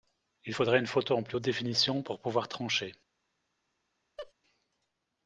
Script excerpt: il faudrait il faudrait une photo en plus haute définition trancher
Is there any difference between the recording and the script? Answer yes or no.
yes